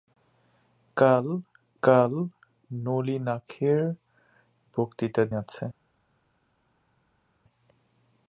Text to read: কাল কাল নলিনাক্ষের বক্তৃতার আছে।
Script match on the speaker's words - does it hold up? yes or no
yes